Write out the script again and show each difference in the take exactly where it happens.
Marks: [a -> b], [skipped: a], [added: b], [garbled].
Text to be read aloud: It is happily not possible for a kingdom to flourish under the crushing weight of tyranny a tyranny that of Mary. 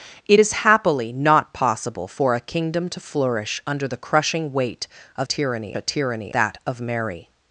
It is happily not possible for a kingdom to flourish under the crushing weight of tyranny a tyranny that of Mary.